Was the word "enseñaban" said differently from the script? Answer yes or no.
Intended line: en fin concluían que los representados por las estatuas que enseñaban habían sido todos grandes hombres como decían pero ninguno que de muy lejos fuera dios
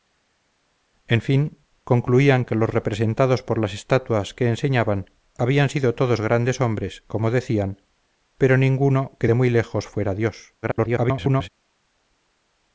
no